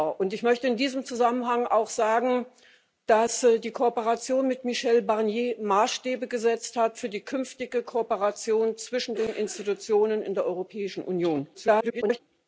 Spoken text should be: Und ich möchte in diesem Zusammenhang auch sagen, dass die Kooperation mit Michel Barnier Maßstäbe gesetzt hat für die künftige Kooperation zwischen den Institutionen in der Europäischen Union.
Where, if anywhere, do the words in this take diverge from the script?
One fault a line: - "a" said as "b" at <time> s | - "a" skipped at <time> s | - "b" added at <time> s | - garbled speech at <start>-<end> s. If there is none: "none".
- garbled speech at 11.5-12.2 s